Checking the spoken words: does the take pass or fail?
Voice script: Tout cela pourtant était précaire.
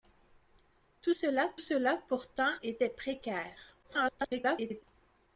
fail